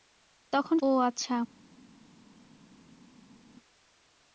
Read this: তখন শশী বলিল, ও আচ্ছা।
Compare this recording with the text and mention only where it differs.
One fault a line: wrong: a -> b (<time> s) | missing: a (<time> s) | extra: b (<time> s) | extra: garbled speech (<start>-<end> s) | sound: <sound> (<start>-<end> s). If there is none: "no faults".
missing: শশী বলিল (0.8 s)